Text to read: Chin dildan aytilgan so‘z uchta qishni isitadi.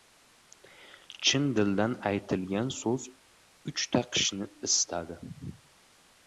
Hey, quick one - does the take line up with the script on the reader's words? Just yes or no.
yes